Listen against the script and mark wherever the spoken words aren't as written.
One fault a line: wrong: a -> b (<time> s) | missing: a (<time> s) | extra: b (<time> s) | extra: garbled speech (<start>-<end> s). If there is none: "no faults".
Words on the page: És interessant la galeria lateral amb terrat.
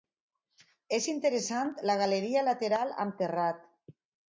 no faults